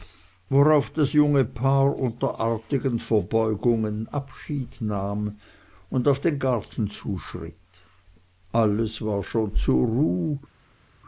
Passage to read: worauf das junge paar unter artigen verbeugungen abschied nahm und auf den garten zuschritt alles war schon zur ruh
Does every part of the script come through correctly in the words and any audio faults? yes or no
yes